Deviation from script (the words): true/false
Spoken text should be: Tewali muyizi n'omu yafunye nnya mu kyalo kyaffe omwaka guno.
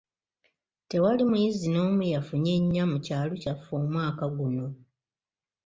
false